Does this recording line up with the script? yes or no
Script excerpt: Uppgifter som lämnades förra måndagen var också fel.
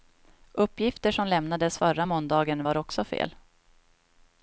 yes